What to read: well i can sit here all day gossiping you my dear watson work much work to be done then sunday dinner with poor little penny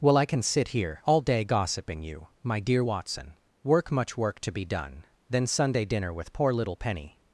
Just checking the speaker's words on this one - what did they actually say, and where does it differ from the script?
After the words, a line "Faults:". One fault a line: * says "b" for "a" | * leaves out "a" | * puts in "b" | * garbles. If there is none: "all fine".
well i can sit here all day gossiping you my dear watson work much work to be done then sunday dinner with poor little penny
Faults:
all fine